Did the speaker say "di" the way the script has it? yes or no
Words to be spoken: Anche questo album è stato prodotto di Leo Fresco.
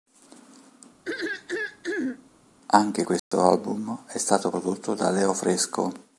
no